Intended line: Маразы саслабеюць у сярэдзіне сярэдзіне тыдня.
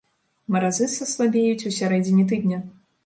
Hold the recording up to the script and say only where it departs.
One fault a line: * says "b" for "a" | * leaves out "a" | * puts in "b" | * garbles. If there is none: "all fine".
* leaves out "сярэдзіне"